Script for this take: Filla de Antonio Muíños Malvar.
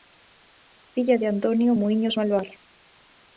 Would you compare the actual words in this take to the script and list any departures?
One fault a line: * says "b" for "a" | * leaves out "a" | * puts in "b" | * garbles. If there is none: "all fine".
all fine